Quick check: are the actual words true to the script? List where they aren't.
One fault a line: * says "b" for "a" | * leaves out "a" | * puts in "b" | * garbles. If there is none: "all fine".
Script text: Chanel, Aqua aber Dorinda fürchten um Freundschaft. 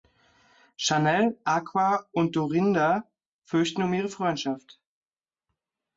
* says "und" for "aber"
* puts in "ihre"